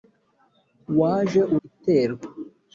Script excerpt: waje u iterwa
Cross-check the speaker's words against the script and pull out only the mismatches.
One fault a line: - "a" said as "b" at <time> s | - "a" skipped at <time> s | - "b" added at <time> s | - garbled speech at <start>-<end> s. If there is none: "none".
none